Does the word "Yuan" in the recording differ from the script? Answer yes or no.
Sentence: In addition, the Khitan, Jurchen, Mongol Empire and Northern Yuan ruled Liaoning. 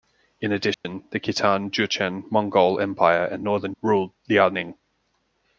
yes